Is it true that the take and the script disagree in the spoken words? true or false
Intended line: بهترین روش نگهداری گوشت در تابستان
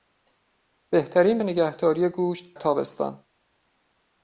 true